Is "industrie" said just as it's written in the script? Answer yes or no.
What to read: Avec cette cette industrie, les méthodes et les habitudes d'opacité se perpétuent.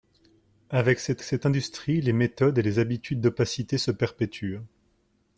yes